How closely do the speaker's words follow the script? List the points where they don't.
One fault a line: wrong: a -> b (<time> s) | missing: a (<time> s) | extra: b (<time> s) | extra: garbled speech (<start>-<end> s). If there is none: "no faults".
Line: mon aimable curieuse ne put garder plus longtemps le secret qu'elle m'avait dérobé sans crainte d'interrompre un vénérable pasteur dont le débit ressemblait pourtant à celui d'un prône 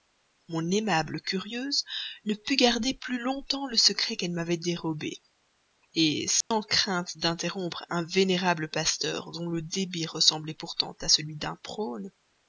no faults